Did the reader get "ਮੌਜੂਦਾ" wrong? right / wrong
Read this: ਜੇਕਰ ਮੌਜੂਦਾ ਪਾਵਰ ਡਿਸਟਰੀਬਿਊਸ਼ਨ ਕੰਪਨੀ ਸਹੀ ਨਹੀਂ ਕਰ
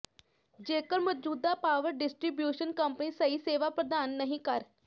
right